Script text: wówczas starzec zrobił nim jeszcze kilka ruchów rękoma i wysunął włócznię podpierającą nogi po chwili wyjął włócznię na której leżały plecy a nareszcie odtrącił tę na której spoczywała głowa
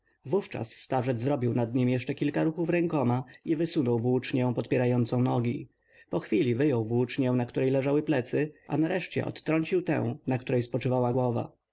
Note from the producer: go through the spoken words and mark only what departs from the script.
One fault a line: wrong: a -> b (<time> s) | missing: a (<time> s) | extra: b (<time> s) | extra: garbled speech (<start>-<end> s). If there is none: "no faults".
extra: nad (1.5 s)